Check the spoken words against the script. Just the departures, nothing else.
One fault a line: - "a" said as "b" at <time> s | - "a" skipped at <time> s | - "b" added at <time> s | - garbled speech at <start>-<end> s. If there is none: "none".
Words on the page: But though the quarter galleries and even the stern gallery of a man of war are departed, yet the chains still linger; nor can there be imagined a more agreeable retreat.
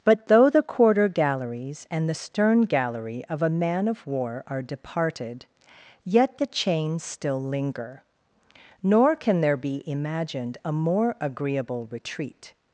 - "even" skipped at 2.1 s